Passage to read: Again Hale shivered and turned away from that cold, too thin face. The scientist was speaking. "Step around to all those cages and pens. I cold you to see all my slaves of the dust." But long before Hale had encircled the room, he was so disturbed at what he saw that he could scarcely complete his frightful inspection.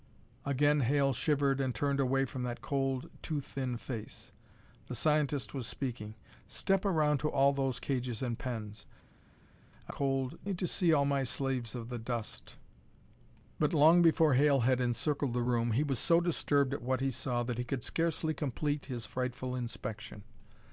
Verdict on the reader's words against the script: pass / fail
pass